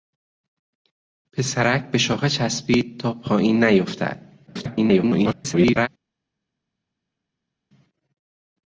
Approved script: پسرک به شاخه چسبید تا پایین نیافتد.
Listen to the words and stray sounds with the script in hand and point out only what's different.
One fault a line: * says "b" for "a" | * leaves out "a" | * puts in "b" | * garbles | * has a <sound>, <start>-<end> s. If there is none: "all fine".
* garbles